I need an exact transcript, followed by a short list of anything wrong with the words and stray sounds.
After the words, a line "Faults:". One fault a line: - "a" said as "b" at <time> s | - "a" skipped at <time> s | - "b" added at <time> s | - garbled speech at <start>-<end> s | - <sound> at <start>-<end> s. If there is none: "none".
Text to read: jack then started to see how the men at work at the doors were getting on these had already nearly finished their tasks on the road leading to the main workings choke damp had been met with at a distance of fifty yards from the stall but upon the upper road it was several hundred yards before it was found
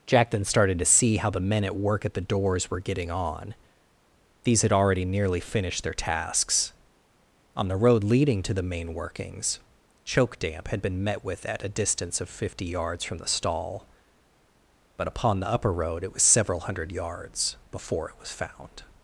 jack then started to see how the men at work at the doors were getting on these had already nearly finished their tasks on the road leading to the main workings choke damp had been met with at a distance of fifty yards from the stall but upon the upper road it was several hundred yards before it was found
Faults:
none